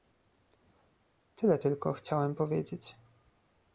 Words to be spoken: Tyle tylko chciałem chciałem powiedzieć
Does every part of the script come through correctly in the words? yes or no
no